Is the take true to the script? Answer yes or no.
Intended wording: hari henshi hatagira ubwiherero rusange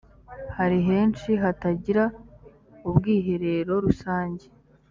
yes